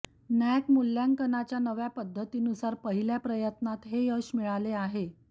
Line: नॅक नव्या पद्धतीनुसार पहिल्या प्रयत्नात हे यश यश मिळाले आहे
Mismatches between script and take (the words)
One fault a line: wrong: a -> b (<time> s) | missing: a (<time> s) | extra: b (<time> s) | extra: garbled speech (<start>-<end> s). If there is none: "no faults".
extra: मूल्यांकनाच्या (0.7 s)
missing: यश (4.3 s)